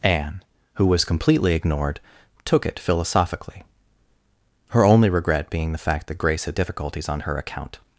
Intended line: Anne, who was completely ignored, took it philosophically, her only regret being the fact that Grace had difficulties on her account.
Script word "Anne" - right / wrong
right